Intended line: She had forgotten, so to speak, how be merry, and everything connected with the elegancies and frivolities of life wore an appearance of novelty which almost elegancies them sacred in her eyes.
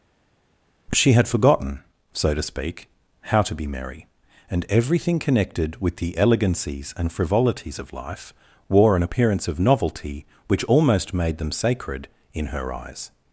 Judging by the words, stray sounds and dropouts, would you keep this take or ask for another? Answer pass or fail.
fail